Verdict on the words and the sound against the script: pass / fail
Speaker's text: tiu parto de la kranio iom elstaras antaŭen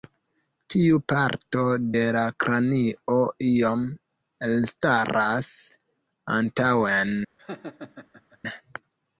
fail